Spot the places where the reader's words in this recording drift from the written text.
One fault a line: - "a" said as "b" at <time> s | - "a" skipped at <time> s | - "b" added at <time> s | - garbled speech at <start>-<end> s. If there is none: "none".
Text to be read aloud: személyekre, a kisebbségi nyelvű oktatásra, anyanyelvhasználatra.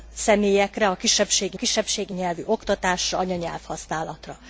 - "kisebbségi" added at 1.5 s